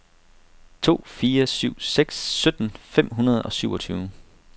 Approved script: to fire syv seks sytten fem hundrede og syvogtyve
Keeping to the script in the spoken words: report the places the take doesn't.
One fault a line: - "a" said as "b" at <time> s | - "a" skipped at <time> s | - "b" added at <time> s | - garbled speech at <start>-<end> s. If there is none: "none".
none